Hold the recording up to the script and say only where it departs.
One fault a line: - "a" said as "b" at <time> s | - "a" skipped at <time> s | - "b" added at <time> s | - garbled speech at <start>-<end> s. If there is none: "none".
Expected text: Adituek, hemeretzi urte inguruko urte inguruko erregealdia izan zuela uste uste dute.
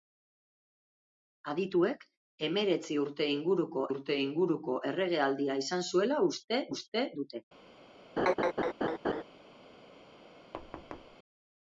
none